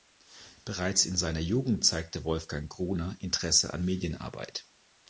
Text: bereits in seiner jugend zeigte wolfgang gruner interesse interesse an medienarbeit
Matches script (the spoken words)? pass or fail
fail